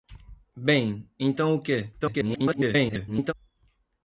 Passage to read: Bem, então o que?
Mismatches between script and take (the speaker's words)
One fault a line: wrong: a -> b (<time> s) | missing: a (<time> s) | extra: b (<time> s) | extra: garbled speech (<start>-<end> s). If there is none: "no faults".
extra: garbled speech (2.0-3.3 s)